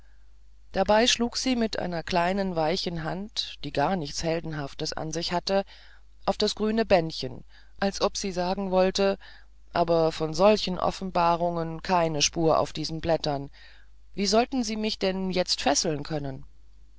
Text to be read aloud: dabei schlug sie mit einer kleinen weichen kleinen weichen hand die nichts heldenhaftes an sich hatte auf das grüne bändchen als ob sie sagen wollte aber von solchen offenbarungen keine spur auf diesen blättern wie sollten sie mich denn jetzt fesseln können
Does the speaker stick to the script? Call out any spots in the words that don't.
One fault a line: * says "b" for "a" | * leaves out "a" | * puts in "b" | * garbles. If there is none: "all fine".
* leaves out "kleinen weichen"
* puts in "gar"